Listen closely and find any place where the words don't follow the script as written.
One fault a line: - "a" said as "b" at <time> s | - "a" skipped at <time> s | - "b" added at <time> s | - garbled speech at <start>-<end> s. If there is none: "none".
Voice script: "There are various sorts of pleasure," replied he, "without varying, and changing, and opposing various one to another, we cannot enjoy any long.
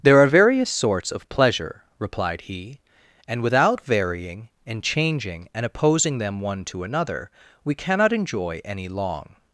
- "and" added at 3.3 s
- "various" said as "them" at 6.2 s